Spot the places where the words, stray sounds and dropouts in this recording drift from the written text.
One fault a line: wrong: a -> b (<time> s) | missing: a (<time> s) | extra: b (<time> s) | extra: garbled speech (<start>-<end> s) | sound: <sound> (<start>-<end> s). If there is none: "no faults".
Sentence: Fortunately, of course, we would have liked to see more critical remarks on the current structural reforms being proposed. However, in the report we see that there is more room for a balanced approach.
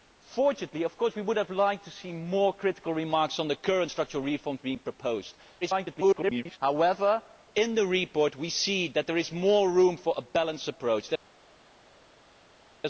extra: garbled speech (5.6-6.6 s)